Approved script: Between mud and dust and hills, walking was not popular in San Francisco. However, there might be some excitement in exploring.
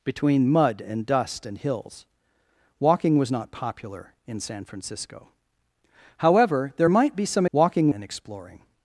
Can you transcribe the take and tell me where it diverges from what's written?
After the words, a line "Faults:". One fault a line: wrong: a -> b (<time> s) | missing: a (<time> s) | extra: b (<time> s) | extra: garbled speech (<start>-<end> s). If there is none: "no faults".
Between mud and dust and hills, walking was not popular in San Francisco. However, there might be some walking in exploring.
Faults:
wrong: excitement -> walking (7.5 s)